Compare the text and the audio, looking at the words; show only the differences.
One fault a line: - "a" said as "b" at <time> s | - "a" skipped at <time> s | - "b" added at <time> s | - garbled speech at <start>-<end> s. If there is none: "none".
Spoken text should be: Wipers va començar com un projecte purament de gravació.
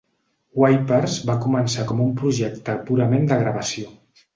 none